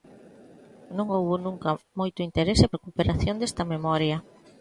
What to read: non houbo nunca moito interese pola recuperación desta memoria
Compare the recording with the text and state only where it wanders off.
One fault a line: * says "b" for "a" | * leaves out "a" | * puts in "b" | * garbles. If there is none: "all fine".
* leaves out "pola"